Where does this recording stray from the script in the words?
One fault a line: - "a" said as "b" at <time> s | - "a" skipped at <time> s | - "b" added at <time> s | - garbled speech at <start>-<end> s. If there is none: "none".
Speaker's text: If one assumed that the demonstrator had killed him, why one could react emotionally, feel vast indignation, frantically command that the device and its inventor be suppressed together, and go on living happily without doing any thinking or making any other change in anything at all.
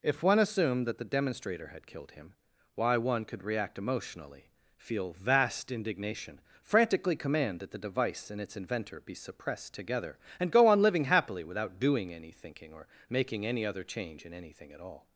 none